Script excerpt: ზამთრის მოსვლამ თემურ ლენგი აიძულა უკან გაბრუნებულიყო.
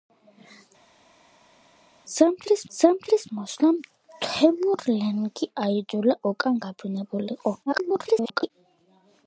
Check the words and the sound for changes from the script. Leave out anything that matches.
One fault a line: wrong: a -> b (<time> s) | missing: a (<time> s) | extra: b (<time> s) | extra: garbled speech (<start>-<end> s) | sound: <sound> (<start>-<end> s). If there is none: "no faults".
extra: ზამთრის (2.8 s)
extra: garbled speech (7.7-8.5 s)